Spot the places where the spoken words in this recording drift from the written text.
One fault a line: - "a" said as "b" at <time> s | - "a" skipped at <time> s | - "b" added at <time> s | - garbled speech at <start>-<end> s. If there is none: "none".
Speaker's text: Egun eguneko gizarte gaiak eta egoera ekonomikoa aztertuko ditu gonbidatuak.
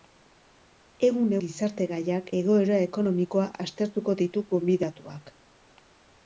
- "eguneko" skipped at 1.4 s
- "eta" skipped at 2.3 s